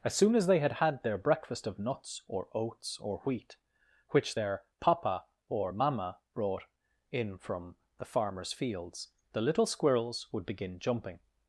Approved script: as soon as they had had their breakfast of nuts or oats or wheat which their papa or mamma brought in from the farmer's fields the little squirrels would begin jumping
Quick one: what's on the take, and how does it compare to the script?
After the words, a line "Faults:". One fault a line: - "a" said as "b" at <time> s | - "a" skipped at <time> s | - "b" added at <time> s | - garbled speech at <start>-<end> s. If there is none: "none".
as soon as they had had their breakfast of nuts or oats or wheat which their papa or mamma brought in from the farmer's fields the little squirrels would begin jumping
Faults:
none